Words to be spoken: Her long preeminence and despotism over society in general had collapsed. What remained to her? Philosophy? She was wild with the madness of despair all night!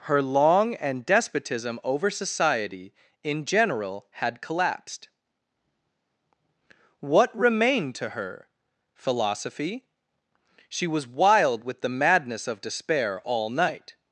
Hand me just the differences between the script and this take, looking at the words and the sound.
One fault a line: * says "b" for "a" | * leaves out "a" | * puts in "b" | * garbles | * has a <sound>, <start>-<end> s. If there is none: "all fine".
* leaves out "preeminence"